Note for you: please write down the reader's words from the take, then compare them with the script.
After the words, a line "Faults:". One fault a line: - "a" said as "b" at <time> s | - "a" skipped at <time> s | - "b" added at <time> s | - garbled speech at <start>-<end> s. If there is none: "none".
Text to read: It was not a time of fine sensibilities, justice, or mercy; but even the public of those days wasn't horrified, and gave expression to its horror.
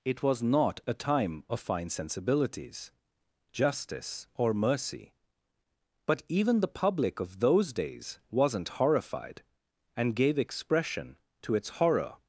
It was not a time of fine sensibilities, justice, or mercy; but even the public of those days wasn't horrified, and gave expression to its horror.
Faults:
none